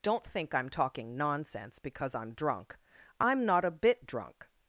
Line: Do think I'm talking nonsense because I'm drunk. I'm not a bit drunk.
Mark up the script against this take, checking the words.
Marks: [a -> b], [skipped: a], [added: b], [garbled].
[Do -> Don't] think I'm talking nonsense because I'm drunk. I'm not a bit drunk.